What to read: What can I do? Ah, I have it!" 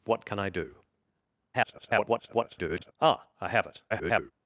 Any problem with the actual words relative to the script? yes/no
yes